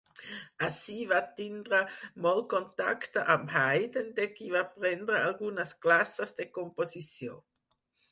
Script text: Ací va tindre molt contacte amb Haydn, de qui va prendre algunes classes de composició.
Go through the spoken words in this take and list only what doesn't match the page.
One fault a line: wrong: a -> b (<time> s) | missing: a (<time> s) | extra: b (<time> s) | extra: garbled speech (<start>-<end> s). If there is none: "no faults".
no faults